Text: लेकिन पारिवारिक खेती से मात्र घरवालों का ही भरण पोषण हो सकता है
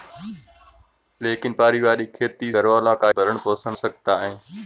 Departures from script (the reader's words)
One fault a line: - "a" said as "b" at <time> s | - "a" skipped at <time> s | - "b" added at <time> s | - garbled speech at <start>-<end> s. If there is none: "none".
- "से मात्र" skipped at 2.5 s
- "ही" skipped at 3.1 s
- "हो" skipped at 3.8 s